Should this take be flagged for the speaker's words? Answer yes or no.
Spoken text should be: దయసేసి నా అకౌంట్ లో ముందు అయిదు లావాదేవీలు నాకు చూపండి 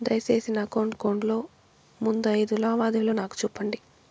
yes